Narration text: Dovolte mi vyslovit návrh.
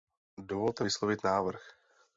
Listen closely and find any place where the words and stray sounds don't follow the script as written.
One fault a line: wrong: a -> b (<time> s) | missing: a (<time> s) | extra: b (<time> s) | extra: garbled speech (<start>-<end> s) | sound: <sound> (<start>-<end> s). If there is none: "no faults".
missing: mi (0.8 s)